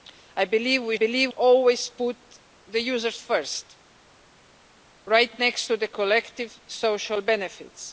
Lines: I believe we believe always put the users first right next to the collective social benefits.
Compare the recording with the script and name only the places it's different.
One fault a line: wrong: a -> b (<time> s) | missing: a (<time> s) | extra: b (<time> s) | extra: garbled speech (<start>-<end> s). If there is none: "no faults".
no faults